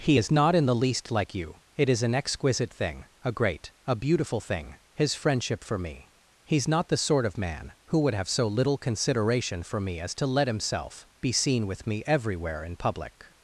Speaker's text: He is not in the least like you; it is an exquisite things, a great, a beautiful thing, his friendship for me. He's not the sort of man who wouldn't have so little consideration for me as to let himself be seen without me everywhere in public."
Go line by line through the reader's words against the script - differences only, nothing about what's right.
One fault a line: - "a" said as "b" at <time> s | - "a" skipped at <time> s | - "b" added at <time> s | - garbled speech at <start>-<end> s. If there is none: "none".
- "things" said as "thing" at 2.7 s
- "wouldn't" said as "would" at 8.0 s
- "without" said as "with" at 11.7 s